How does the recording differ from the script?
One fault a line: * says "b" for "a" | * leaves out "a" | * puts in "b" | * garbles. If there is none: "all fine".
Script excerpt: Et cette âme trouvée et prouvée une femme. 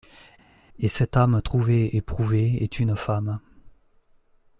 * puts in "est"